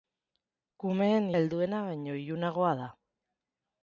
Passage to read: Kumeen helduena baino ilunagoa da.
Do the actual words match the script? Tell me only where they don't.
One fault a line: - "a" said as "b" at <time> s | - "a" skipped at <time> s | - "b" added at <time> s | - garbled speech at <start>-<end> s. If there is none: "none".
none